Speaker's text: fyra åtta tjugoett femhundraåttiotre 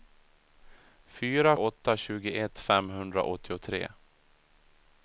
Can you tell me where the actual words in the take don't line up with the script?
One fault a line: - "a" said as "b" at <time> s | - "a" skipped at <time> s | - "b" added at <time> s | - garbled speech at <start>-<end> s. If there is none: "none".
none